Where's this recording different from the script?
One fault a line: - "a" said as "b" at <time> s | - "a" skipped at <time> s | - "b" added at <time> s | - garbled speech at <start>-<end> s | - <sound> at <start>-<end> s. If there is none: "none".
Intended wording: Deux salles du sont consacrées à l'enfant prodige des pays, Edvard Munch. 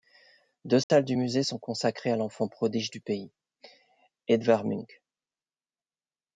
- dropout at 0.8-0.9 s
- "musée" added at 1.1 s
- "des" said as "du" at 2.9 s